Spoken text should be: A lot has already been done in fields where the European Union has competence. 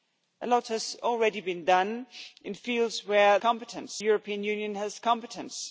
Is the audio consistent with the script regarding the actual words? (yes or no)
no